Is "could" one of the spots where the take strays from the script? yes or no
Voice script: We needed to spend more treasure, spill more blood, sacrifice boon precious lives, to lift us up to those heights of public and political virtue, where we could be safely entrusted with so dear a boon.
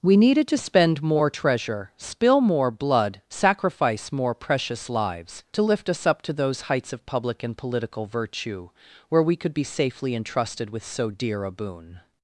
no